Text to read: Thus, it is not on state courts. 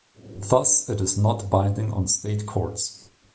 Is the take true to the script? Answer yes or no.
no